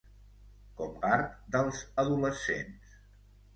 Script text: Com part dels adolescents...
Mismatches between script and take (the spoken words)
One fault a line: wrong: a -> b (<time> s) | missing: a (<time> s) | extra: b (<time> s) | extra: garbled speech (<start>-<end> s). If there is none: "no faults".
no faults